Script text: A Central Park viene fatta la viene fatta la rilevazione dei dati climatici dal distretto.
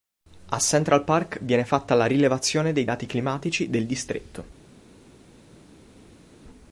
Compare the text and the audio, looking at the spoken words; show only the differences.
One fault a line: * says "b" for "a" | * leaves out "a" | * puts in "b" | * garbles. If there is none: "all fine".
* leaves out "viene fatta la"
* says "del" for "dal"